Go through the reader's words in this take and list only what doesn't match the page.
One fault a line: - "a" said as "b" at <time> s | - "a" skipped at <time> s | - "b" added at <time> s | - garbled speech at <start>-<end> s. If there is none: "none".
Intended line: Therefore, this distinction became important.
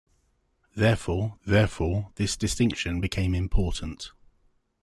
- "therefore" added at 1.4 s